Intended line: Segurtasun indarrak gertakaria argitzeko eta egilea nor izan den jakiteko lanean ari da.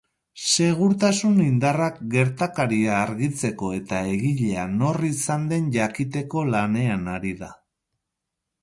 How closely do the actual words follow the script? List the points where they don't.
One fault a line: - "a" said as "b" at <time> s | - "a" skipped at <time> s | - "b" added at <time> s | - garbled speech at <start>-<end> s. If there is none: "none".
none